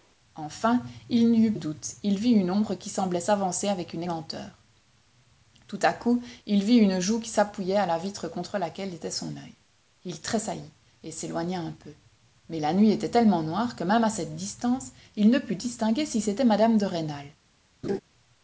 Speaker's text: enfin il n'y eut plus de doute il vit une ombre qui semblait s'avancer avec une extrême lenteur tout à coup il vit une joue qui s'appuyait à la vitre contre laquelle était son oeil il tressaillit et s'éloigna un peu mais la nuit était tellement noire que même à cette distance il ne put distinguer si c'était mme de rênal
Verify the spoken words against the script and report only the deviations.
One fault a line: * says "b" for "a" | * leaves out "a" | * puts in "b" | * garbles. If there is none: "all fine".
* leaves out "plus de"
* leaves out "extrême"